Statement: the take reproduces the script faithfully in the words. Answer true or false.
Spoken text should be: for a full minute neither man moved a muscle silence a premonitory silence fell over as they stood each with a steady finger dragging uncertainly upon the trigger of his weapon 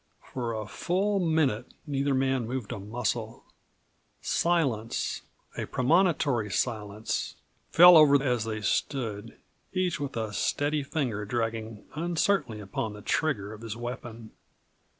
true